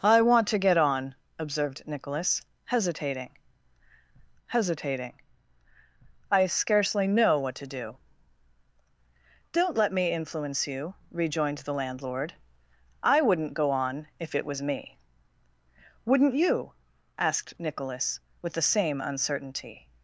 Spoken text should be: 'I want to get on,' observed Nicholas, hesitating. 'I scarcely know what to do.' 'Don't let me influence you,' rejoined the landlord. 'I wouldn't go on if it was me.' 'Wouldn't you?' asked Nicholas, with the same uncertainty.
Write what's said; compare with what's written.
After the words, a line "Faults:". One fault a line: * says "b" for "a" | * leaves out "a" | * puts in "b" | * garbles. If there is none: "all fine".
'I want to get on,' observed Nicholas, hesitating hesitating. 'I scarcely know what to do.' 'Don't let me influence you,' rejoined the landlord. 'I wouldn't go on if it was me.' 'Wouldn't you?' asked Nicholas, with the same uncertainty.
Faults:
* puts in "hesitating"